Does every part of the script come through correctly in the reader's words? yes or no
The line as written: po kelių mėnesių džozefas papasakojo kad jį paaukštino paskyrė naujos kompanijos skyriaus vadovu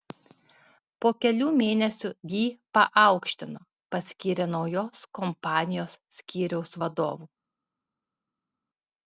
no